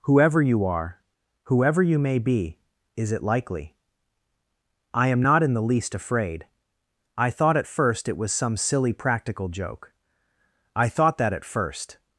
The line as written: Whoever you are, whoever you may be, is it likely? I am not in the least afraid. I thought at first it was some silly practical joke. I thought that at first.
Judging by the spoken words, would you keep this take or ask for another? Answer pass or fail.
pass